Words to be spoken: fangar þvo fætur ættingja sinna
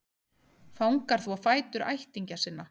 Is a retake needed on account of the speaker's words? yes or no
no